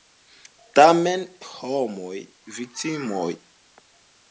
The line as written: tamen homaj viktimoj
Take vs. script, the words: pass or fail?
pass